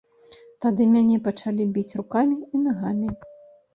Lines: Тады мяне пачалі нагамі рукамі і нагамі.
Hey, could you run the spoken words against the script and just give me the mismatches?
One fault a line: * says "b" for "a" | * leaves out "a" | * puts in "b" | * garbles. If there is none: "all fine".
* says "біць" for "нагамі"